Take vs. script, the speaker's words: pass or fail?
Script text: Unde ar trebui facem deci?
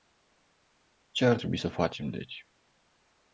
fail